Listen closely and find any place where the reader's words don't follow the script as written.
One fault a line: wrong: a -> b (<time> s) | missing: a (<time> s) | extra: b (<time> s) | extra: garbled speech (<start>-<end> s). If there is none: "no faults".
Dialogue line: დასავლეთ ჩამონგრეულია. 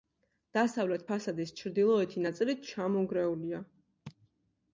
extra: ფასადის ჩრდილოეთი ნაწილი (1.1 s)